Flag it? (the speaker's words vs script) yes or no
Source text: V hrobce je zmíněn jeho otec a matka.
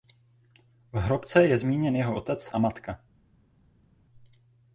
no